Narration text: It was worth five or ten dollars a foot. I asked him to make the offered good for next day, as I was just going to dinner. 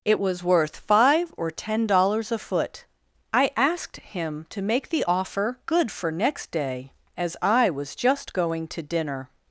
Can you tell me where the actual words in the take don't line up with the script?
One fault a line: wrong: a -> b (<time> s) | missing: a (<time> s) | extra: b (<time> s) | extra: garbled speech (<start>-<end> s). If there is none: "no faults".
wrong: offered -> offer (5.1 s)